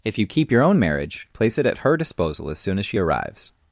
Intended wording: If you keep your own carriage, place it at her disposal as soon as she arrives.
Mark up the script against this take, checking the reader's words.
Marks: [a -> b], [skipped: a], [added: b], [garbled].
If you keep your own [carriage, -> marriage] place it at her disposal as soon as she arrives.